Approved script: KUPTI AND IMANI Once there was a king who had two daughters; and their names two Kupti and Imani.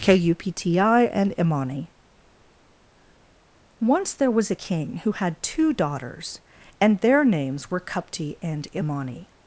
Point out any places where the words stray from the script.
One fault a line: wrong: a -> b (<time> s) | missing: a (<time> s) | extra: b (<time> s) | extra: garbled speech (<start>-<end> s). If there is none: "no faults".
wrong: two -> were (7.7 s)